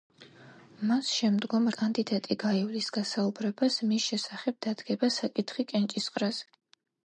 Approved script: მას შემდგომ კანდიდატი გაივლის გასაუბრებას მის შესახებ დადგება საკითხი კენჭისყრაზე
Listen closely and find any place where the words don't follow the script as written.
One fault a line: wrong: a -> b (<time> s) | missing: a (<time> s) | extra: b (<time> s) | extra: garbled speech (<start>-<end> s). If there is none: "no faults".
no faults